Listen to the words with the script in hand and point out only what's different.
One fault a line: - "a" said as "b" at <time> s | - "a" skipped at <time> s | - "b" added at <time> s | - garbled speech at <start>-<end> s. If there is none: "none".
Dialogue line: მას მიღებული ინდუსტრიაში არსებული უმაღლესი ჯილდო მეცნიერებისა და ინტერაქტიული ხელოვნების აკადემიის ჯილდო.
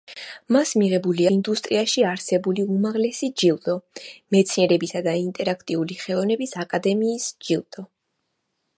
none